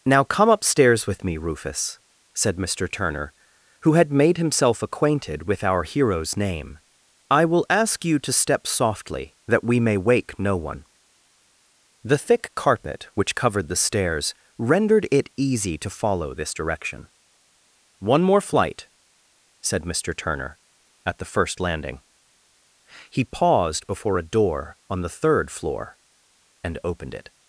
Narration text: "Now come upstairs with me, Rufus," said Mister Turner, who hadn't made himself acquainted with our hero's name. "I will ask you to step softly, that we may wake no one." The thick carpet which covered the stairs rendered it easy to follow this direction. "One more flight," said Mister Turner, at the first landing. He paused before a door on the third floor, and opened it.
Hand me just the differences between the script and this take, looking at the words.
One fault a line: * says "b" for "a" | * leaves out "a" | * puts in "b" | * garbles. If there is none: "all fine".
* says "had" for "hadn't"